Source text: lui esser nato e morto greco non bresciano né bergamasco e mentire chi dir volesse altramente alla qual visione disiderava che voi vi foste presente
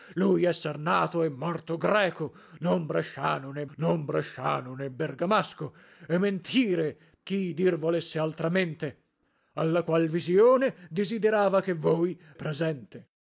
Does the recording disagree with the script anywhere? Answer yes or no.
yes